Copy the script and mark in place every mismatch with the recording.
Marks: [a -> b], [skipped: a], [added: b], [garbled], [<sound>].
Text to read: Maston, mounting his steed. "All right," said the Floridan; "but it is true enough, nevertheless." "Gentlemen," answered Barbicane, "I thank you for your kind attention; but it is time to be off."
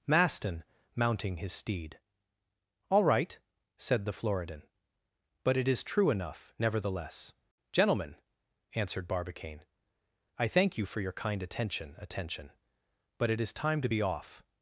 Maston, mounting his steed. "All right," said the Floridan; "but it is true enough, nevertheless." "Gentlemen," answered Barbicane, "I thank you for your kind attention; [added: attention] but it is time to be off."